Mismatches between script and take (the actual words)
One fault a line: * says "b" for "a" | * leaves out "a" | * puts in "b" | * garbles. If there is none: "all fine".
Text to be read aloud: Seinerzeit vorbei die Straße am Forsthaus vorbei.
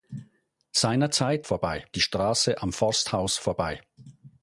all fine